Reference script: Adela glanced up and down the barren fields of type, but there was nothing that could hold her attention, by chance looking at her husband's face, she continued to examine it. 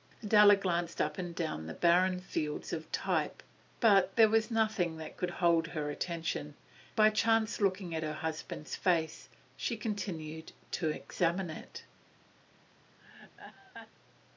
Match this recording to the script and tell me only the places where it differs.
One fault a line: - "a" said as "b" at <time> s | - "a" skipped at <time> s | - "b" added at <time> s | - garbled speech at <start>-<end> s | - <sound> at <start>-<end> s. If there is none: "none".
- laugh at 13.0-13.9 s